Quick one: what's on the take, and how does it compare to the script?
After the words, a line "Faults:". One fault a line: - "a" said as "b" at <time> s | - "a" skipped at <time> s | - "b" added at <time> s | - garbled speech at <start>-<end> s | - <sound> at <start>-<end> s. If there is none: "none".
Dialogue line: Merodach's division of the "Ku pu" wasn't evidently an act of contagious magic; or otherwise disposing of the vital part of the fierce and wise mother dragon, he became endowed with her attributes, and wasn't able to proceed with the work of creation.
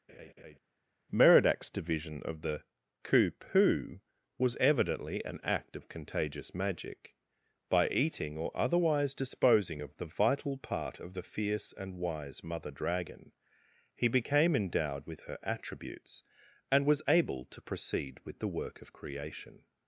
Merodach's division of the "Ku pu" was evidently an act of contagious magic; by eating or otherwise disposing of the vital part of the fierce and wise mother dragon, he became endowed with her attributes, and was able to proceed with the work of creation.
Faults:
- laugh at 0.1-0.6 s
- "wasn't" said as "was" at 4.4 s
- "by eating" added at 7.7 s
- "wasn't" said as "was" at 16.9 s